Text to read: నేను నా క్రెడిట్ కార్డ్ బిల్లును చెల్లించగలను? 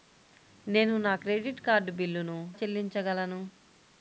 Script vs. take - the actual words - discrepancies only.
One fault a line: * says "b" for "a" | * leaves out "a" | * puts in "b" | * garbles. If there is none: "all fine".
all fine